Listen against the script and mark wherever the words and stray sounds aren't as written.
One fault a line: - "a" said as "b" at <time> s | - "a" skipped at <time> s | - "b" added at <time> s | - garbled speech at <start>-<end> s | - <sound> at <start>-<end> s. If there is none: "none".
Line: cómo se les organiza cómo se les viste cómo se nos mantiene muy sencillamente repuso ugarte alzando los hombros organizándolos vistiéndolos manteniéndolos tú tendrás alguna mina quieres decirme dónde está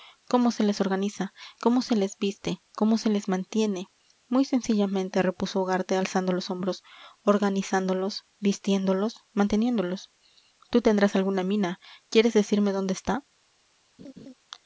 - "nos" said as "les" at 3.1 s
- laugh at 14.0-14.3 s